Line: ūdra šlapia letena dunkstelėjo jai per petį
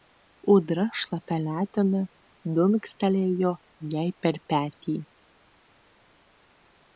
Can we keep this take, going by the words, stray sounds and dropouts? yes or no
yes